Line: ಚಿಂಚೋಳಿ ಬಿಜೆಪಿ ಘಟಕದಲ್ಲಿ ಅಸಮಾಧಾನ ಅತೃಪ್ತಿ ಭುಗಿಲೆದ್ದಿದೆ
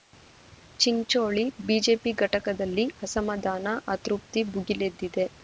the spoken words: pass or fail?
pass